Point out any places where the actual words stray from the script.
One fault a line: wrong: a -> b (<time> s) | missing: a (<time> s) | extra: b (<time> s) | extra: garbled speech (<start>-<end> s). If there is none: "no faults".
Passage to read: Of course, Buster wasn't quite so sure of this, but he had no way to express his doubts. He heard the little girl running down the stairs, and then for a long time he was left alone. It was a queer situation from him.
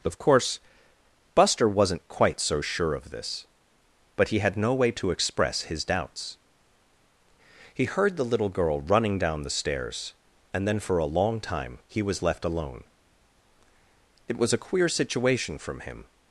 no faults